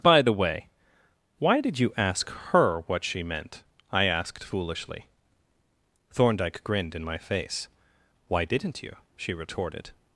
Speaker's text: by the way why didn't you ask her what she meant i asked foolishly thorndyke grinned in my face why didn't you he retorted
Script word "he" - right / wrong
wrong